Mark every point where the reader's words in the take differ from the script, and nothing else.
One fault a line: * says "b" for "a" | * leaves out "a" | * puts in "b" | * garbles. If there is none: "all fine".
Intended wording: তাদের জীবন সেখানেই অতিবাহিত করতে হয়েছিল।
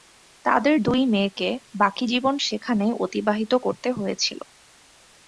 * puts in "দুই মেয়েকে বাকি"